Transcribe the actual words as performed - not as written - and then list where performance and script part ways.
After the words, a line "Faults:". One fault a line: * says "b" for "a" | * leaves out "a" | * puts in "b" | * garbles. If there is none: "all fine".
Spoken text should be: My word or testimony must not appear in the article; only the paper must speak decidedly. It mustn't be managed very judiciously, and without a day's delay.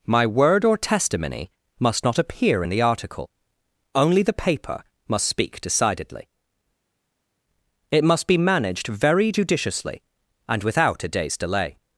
My word or testimony must not appear in the article; only the paper must speak decidedly. It must be managed very judiciously, and without a day's delay.
Faults:
* says "must" for "mustn't"